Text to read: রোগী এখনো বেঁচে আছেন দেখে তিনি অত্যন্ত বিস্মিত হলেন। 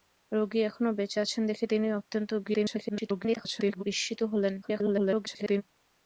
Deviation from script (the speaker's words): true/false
true